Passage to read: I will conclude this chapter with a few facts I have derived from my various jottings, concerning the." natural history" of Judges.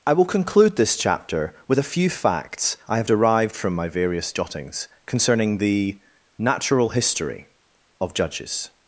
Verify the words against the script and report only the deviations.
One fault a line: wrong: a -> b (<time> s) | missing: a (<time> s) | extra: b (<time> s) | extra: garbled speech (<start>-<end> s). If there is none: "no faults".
no faults